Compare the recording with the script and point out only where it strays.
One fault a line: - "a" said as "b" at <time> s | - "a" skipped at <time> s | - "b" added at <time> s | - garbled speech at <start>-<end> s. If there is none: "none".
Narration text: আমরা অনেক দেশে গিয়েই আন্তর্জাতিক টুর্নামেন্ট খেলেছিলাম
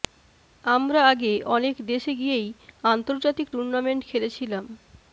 - "আগে" added at 1.1 s